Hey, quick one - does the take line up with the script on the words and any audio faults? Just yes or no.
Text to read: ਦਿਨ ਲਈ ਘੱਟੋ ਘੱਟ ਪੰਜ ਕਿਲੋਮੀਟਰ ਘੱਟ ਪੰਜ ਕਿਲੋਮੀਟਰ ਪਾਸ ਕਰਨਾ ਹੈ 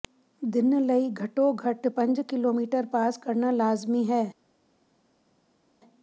no